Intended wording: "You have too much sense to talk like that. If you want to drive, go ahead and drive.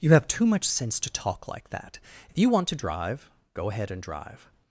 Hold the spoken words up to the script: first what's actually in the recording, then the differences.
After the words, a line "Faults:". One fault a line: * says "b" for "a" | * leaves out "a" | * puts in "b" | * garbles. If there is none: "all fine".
"You have too much sense to talk like that. If you want to drive, go ahead and drive.
Faults:
all fine